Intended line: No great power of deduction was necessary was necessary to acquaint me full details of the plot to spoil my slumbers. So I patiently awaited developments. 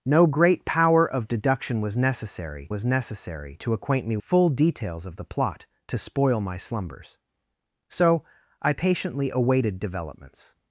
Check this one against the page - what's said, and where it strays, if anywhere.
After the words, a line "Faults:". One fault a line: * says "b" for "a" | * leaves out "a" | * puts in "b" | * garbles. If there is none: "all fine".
No great power of deduction was necessary was necessary to acquaint me full details of the plot to spoil my slumbers. So I patiently awaited developments.
Faults:
all fine